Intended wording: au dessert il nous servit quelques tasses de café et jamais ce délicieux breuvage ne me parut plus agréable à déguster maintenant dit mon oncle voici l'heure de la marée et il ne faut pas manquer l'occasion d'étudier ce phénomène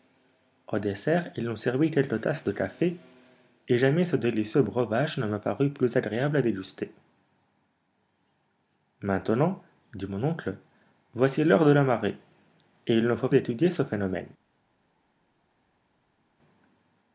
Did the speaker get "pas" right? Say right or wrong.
wrong